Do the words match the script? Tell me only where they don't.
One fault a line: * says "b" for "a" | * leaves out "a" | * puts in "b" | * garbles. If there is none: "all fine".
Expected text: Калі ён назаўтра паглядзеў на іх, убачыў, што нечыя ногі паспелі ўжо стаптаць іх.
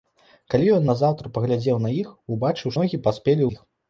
* leaves out "што нечыя"
* leaves out "ўжо стаптаць"